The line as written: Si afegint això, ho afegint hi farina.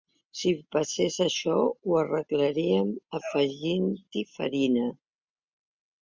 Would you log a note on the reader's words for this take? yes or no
yes